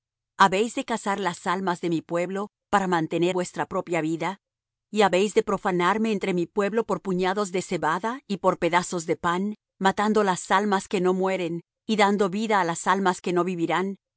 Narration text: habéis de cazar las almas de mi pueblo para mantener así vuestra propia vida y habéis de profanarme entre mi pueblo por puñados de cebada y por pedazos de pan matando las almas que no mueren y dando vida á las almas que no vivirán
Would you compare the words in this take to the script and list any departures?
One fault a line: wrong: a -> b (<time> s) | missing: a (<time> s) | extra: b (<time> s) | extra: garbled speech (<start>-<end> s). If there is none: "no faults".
missing: así (3.4 s)